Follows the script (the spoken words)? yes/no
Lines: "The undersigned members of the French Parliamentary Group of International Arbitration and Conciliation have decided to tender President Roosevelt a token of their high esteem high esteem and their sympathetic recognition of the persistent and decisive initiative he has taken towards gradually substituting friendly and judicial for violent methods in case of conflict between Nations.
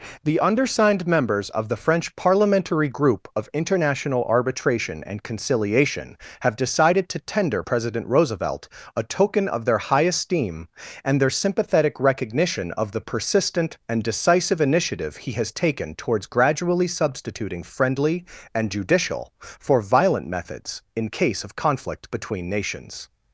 no